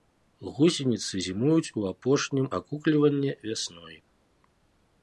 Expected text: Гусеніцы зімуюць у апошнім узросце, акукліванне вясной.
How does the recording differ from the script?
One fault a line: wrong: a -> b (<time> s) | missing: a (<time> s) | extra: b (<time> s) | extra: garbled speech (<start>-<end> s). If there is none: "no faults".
missing: узросце (2.5 s)